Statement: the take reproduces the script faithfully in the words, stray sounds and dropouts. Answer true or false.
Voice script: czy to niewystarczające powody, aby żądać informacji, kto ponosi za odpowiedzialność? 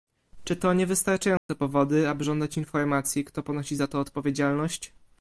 false